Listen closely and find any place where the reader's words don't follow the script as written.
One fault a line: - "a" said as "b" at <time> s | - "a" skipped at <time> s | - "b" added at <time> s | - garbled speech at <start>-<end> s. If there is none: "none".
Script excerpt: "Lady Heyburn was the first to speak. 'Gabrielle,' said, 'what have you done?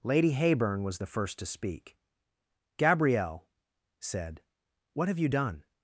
none